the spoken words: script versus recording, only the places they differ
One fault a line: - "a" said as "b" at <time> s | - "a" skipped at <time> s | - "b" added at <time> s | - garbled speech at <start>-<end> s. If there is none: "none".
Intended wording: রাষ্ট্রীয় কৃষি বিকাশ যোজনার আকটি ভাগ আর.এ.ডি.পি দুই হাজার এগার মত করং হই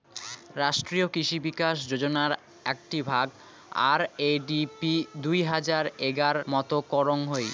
none